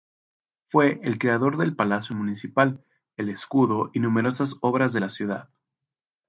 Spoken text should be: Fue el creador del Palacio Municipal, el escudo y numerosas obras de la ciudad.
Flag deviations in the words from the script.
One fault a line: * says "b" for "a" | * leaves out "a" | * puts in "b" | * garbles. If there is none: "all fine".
all fine